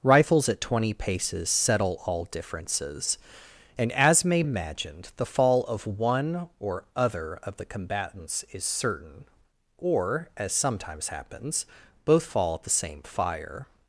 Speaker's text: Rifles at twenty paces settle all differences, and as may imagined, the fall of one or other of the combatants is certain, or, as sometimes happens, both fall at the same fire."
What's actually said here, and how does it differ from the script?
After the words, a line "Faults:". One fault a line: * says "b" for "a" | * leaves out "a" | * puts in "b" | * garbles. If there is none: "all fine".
Rifles at twenty paces settle all differences, and as may imagined, the fall of one or other of the combatants is certain, or, as sometimes happens, both fall at the same fire."
Faults:
all fine